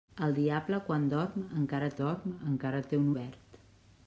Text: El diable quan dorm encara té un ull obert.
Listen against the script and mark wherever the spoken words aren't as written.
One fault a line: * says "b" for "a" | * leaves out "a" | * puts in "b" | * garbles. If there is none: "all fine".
* puts in "dorm encara"
* leaves out "ull"